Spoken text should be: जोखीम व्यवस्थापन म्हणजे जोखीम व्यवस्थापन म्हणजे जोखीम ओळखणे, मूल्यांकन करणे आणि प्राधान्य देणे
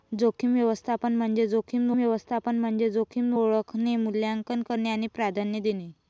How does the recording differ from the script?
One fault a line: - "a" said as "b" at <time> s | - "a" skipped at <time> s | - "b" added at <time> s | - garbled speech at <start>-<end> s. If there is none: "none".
none